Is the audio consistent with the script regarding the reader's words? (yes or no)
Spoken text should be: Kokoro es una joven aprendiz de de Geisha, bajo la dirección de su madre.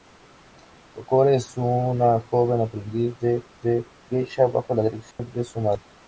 yes